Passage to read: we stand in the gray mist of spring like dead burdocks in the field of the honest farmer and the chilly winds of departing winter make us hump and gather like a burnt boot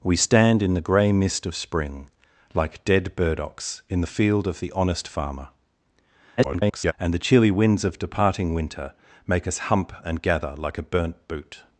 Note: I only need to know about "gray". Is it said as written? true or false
true